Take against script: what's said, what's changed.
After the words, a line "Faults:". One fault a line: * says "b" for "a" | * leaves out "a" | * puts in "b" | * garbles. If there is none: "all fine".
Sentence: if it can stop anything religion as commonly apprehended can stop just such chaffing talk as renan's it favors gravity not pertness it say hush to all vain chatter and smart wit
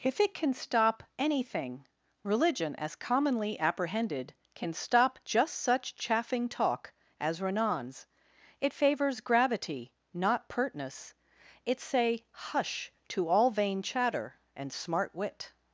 if it can stop anything religion as commonly apprehended can stop just such chaffing talk as renan's it favors gravity not pertness it say hush to all vain chatter and smart wit
Faults:
all fine